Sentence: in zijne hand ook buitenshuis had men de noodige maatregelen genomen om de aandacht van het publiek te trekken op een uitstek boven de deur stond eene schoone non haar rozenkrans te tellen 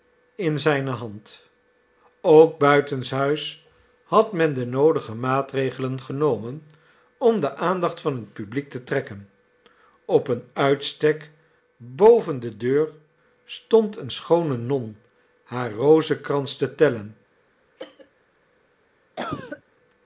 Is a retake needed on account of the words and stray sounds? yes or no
yes